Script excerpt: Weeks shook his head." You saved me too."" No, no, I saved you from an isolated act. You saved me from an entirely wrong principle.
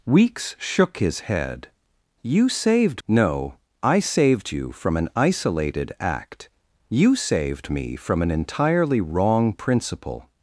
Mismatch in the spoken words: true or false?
true